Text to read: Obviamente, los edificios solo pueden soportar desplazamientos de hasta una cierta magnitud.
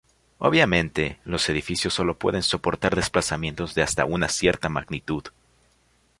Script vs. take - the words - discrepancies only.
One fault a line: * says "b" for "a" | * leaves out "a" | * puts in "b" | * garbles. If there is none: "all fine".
all fine